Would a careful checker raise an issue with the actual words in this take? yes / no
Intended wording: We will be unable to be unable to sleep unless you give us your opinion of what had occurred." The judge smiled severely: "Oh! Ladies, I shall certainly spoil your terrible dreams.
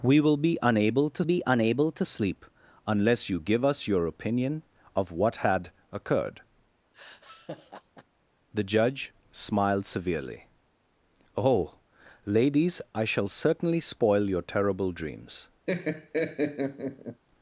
no